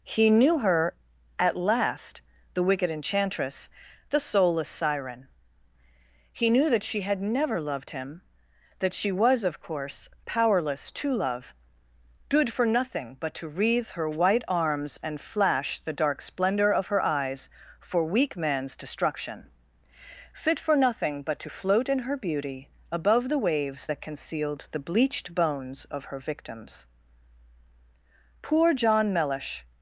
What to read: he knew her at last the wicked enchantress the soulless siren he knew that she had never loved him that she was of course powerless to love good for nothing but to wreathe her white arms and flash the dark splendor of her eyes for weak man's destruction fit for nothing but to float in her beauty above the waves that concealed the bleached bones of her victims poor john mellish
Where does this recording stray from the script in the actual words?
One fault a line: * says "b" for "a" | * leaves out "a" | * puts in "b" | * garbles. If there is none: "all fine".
all fine